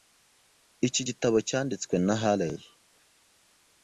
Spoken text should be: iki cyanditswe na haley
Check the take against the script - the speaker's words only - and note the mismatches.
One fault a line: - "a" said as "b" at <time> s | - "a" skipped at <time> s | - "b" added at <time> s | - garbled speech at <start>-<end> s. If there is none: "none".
- "gitabo" added at 1.1 s